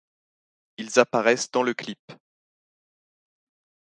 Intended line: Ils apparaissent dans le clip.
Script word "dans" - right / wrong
right